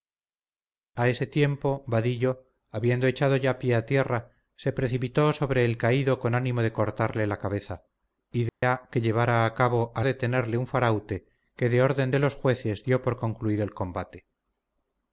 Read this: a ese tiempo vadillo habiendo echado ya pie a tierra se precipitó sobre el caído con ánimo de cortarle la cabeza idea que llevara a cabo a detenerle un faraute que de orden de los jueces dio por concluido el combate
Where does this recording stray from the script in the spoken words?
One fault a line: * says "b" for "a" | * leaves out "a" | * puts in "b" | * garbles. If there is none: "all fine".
all fine